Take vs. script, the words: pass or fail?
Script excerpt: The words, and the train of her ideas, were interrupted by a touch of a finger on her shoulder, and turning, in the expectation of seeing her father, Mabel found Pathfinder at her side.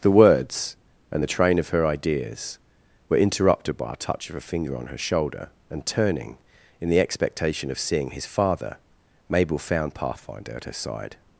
fail